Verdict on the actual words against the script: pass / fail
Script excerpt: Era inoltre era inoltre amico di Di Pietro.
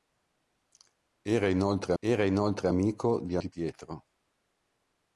pass